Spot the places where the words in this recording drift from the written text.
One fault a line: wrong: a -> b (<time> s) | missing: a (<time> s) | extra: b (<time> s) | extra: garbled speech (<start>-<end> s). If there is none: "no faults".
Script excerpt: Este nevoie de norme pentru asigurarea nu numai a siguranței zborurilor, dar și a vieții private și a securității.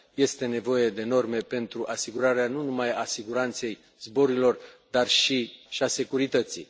missing: a vieții private (5.5 s)